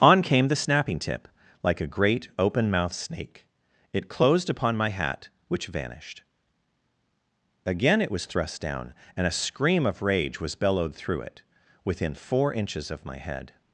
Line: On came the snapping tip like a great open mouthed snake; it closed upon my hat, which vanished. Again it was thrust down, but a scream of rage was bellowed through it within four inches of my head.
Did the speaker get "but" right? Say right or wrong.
wrong